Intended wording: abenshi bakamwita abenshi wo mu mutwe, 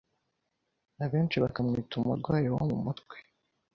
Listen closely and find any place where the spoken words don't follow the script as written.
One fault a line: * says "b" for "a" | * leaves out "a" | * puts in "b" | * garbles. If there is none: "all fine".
* says "umurwayi" for "abenshi"